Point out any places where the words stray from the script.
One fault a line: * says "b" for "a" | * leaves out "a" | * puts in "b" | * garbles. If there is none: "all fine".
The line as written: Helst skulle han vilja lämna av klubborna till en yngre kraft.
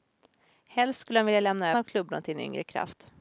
all fine